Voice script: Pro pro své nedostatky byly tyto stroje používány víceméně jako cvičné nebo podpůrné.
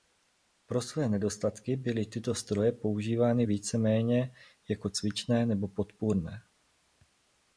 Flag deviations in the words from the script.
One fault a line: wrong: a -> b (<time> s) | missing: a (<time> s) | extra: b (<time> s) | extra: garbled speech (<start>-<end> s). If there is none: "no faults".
missing: pro (0.8 s)